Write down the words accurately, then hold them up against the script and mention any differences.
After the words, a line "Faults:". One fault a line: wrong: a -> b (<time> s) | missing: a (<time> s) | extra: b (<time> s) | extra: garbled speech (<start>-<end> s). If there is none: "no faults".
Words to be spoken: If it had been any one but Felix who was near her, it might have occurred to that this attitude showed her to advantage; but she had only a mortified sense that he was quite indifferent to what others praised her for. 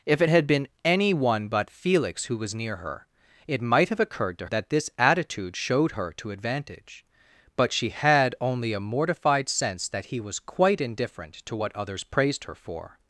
If it had been any one but Felix who was near her, it might have occurred to that this attitude showed her to advantage; but she had only a mortified sense that he was quite indifferent to what others praised her for.
Faults:
no faults